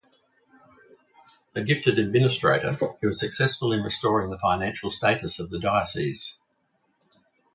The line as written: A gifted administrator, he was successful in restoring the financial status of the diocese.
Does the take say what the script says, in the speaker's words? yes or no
yes